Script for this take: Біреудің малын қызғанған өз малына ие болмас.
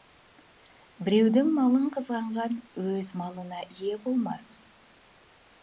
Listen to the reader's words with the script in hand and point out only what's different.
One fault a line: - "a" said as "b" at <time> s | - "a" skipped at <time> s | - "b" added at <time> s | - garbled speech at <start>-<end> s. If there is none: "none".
none